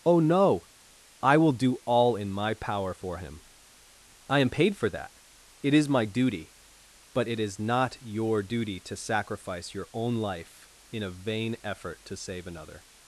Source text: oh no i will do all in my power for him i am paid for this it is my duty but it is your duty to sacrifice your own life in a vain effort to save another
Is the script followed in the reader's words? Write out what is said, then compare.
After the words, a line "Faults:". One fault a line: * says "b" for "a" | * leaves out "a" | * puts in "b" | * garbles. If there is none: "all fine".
oh no i will do all in my power for him i am paid for that it is my duty but it is not your duty to sacrifice your own life in a vain effort to save another
Faults:
* says "that" for "this"
* puts in "not"